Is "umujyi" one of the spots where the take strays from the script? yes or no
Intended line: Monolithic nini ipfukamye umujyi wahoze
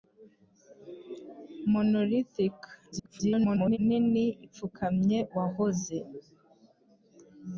yes